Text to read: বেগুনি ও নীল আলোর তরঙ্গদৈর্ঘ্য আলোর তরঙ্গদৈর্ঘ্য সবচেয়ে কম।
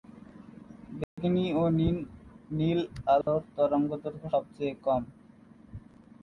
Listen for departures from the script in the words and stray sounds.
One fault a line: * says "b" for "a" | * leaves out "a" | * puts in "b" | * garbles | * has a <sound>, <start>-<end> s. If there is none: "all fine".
* has a dropout, 1.0-1.2 s
* has a dropout, 3.2-3.3 s
* leaves out "আলোর তরঙ্গদৈর্ঘ্য"